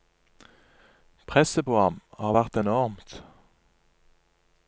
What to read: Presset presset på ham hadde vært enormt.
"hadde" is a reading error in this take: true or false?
true